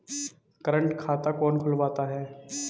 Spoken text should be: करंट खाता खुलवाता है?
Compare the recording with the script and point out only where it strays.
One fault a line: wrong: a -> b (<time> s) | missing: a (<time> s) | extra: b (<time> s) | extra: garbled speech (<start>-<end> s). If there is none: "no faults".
extra: कौन (1.3 s)